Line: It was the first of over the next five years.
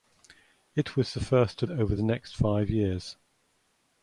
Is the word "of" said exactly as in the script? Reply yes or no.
yes